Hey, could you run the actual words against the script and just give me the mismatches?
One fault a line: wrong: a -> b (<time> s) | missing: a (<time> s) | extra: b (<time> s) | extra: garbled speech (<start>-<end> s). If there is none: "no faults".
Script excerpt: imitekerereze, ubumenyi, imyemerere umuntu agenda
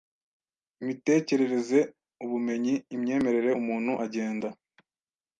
no faults